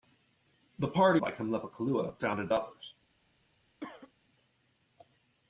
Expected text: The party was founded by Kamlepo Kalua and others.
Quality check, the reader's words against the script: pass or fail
fail